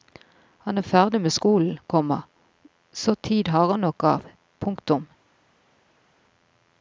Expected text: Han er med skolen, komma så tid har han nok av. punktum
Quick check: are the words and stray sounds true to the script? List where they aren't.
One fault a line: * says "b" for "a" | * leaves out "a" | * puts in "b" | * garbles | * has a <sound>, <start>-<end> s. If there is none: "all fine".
* puts in "ferdig"